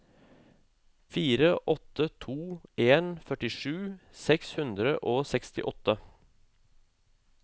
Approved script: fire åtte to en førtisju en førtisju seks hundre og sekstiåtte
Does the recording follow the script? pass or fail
fail